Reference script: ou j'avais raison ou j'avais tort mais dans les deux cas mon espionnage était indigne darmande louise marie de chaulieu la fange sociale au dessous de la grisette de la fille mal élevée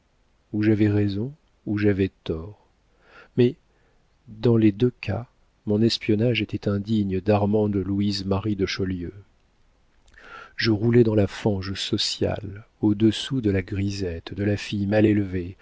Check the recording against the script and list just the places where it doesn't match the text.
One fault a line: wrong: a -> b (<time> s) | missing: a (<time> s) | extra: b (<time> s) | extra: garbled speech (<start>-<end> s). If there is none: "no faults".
extra: je roulais dans (10.6 s)